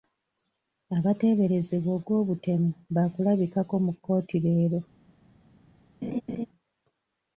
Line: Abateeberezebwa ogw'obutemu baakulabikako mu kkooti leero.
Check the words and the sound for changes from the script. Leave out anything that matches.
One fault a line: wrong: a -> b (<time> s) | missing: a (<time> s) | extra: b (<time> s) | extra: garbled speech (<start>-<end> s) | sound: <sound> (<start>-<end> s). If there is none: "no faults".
sound: laugh (6.0-6.5 s)